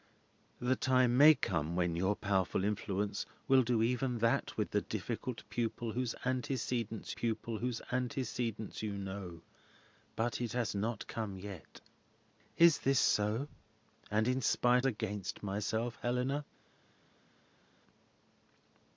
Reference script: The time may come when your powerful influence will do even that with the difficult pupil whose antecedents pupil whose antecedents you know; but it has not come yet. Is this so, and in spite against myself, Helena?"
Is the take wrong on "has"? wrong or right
right